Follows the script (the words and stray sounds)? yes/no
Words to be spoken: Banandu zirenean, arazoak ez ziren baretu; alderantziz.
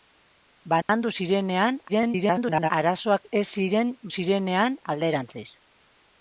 no